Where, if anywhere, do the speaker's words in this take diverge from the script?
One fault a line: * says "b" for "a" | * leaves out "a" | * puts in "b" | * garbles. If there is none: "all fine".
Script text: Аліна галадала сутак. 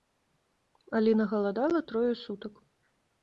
* puts in "трое"